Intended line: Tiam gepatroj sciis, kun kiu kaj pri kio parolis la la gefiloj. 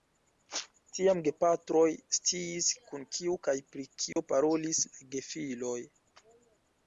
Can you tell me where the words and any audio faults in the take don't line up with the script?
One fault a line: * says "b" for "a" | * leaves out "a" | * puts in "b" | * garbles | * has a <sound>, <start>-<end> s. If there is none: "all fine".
* has a dropout, 4.1-4.2 s
* leaves out "la"